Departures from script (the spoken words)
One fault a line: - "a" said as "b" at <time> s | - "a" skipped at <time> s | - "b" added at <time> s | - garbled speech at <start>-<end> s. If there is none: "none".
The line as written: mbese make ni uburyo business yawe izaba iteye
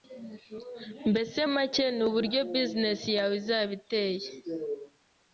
none